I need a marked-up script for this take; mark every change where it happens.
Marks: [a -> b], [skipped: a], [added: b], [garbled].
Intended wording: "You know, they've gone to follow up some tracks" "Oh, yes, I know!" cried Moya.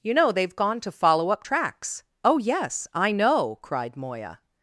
"You know, they've gone to follow up [skipped: some] tracks" "Oh, yes, I know!" cried Moya.